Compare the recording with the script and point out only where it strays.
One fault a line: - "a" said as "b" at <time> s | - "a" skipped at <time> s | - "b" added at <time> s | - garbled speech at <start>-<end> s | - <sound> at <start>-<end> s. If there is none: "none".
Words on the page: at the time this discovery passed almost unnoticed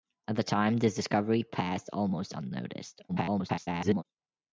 - garbled speech at 3.1-4.0 s